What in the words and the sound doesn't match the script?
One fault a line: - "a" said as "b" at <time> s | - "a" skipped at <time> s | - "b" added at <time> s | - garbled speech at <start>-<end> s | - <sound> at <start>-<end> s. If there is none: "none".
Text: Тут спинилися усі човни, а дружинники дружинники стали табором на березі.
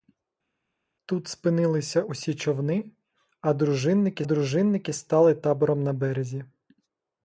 none